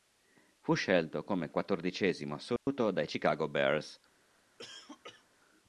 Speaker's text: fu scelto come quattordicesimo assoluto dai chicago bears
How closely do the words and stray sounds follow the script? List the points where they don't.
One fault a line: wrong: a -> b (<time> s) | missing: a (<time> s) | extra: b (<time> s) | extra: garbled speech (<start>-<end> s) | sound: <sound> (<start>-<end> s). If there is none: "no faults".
sound: dropout (2.6-2.7 s)
sound: cough (4.6-5.2 s)